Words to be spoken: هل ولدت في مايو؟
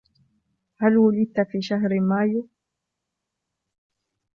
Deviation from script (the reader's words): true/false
true